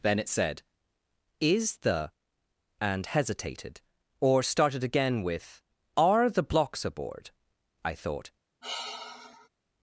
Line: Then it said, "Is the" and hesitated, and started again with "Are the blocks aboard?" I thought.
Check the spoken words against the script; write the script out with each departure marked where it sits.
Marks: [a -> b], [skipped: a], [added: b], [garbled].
Then it said, "Is the" and hesitated, [and -> or] started again with "Are the blocks aboard?" I thought.